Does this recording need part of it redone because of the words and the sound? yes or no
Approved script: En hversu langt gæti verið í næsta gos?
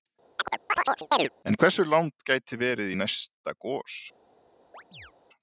yes